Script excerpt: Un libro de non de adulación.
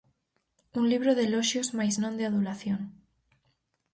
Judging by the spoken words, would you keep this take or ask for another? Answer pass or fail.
fail